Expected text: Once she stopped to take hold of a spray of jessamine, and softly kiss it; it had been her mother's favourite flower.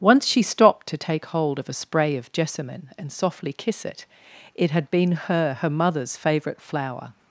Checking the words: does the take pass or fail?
fail